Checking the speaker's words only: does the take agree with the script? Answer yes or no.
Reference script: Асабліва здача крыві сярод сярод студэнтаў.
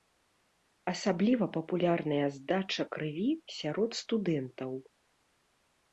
no